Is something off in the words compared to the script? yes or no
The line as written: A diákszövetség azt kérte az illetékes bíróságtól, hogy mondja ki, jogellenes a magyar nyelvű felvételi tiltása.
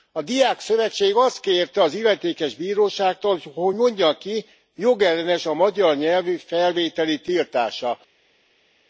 no